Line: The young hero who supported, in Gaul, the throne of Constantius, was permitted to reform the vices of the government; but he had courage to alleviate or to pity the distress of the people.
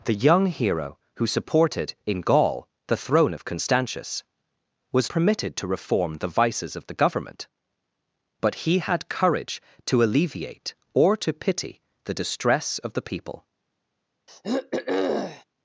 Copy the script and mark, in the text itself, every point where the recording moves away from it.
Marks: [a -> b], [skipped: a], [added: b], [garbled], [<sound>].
The young hero who supported, in Gaul, the throne of Constantius, was permitted to reform the vices of the government; but he had courage to alleviate or to pity the distress of the people. [throat clearing]